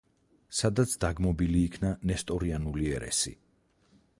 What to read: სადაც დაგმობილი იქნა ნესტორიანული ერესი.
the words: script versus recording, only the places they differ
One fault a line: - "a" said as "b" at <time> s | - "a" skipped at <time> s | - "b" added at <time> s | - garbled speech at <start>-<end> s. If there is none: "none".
none